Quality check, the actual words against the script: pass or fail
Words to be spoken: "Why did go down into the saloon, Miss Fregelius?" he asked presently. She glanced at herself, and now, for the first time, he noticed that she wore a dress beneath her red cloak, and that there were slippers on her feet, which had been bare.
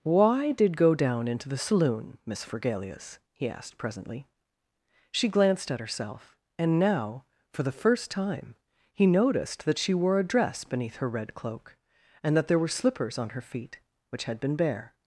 pass